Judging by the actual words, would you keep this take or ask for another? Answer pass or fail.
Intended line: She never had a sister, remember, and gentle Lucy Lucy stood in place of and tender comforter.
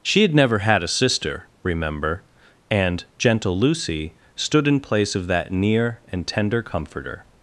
fail